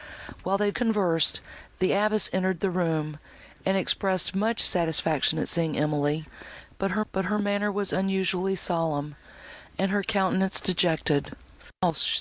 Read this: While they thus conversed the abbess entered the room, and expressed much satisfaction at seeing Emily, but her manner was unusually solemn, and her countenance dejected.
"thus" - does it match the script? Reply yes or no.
no